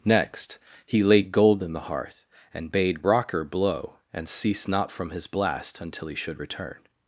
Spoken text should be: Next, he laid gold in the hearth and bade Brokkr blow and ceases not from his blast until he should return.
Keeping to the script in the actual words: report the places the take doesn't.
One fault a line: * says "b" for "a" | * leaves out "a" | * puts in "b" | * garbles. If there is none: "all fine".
* says "cease" for "ceases"